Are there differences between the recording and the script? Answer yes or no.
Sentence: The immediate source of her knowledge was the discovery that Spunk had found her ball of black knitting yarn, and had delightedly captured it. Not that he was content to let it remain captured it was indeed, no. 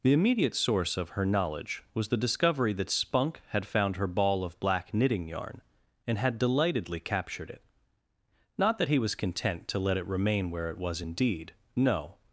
yes